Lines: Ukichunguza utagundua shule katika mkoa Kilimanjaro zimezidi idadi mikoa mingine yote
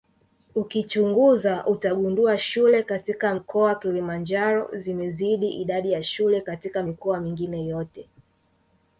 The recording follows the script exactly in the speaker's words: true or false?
false